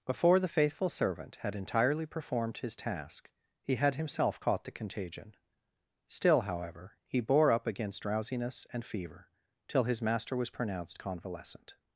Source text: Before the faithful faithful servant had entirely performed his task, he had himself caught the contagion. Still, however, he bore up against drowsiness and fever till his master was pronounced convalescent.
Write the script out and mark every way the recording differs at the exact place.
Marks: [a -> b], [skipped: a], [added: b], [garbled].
Before the faithful [skipped: faithful] servant had entirely performed his task, he had himself caught the contagion. Still, however, he bore up against drowsiness and fever till his master was pronounced convalescent.